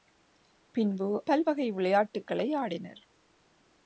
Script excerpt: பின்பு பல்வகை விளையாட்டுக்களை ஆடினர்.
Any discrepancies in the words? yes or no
no